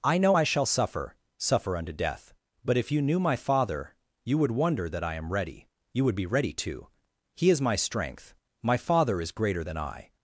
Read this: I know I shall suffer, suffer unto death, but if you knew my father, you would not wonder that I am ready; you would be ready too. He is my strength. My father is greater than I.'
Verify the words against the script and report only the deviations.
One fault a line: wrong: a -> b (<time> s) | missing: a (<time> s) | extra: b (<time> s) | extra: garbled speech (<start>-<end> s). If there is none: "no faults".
missing: not (4.5 s)